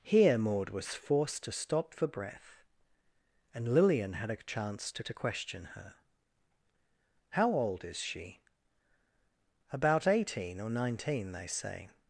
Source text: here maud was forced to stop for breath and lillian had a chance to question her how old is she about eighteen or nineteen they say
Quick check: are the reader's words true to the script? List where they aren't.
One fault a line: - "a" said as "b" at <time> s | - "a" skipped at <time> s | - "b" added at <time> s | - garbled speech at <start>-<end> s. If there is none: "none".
- "to" added at 5.0 s